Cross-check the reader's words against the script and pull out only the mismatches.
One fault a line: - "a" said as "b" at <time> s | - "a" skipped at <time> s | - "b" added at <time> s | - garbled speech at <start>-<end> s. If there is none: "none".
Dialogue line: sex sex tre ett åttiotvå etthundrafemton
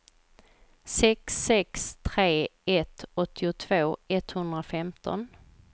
none